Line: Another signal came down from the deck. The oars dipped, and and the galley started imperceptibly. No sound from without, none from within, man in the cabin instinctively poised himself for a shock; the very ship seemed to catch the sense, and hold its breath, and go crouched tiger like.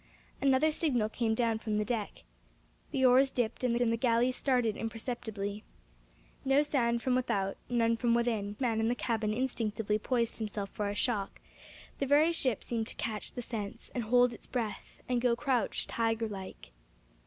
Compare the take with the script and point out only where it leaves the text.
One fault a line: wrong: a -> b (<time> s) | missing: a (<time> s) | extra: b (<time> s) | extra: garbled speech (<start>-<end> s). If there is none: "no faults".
no faults